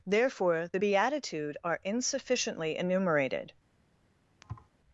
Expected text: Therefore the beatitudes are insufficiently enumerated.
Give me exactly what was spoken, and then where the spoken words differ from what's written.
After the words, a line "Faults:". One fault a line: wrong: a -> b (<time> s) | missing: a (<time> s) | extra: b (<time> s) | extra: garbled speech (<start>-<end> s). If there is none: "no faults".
Therefore the beatitude are insufficiently enumerated.
Faults:
wrong: beatitudes -> beatitude (0.7 s)